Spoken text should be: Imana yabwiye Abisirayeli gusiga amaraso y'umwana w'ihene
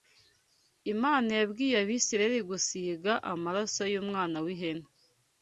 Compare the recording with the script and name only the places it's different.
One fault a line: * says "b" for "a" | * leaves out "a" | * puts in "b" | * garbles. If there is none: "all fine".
all fine